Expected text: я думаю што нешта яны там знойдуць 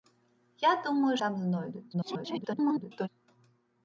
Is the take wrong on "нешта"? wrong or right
wrong